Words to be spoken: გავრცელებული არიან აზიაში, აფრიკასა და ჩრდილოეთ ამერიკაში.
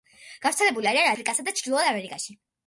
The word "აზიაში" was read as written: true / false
false